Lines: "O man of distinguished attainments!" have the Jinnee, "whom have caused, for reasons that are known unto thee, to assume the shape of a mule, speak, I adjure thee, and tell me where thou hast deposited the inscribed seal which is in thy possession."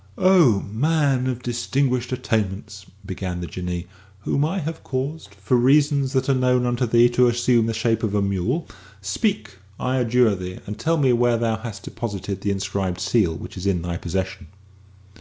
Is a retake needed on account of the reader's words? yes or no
yes